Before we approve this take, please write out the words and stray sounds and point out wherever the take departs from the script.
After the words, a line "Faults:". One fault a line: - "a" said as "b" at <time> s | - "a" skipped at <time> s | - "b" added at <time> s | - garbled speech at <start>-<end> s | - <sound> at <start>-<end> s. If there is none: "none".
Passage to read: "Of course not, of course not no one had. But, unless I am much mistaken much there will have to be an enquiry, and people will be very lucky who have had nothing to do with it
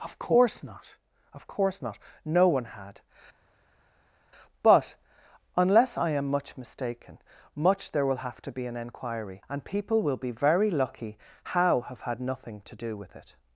"Of course not, of course not no one had. But, unless I am much mistaken much there will have to be an enquiry, and people will be very lucky how have had nothing to do with it
Faults:
- "who" said as "how" at 11.5 s